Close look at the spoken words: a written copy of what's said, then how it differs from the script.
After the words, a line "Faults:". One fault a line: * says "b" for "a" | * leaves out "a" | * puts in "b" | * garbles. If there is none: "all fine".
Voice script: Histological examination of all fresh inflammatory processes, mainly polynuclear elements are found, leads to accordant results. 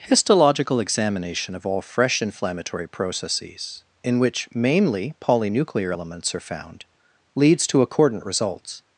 Histological examination of all fresh inflammatory processes, in which mainly polynuclear elements are found, leads to accordant results.
Faults:
* puts in "in which"